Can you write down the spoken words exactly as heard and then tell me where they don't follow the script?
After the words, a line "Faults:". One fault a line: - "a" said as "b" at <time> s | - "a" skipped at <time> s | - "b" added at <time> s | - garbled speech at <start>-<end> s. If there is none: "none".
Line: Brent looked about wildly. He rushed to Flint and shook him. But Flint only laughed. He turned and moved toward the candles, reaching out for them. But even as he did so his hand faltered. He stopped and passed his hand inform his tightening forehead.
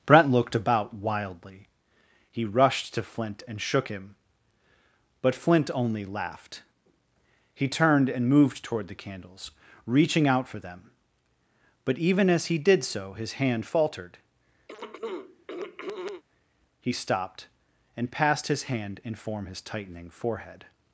Brent looked about wildly. He rushed to Flint and shook him. But Flint only laughed. He turned and moved toward the candles, reaching out for them. But even as he did so his hand faltered. He stopped and passed his hand inform his tightening forehead.
Faults:
none